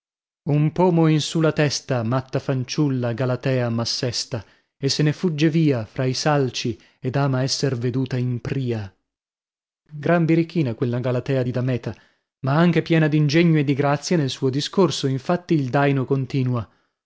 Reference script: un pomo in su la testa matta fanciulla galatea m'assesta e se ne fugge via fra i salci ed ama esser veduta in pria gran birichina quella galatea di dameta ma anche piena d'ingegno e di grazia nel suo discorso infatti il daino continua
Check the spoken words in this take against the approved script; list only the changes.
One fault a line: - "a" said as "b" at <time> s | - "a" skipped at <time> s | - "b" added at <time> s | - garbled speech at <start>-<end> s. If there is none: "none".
none